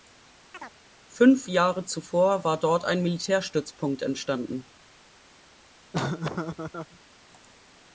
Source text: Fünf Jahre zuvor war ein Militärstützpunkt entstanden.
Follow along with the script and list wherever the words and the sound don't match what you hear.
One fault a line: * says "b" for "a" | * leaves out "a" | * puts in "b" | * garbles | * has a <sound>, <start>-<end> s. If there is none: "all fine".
* has a chirp, 0.5-0.7 s
* puts in "dort"
* has a laugh, 5.9-7.0 s